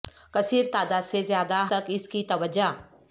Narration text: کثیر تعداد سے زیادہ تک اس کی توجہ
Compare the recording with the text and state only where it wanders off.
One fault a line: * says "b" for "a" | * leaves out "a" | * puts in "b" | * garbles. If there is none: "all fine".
all fine